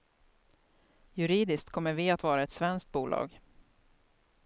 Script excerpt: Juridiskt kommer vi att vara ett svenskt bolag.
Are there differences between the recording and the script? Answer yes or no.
no